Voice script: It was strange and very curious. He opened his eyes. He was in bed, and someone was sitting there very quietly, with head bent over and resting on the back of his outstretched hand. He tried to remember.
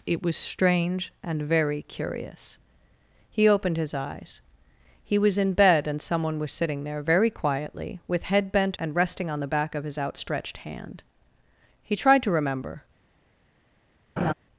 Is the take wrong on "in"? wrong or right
right